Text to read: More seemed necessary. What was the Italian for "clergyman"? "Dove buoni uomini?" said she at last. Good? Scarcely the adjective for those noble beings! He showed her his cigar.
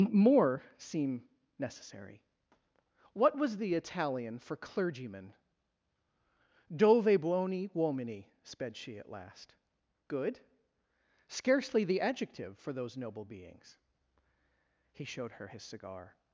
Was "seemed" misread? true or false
true